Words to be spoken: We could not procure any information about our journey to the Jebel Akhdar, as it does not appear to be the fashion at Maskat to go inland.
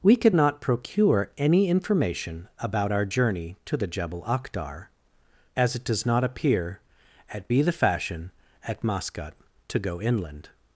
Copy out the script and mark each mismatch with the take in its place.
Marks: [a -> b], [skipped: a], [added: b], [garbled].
We could not procure any information about our journey to the Jebel Akhdar, as it does not appear [to -> at] be the fashion at Maskat to go inland.